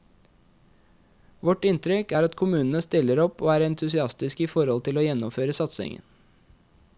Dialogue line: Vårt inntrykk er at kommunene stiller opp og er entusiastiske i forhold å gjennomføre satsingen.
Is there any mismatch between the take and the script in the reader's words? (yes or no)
yes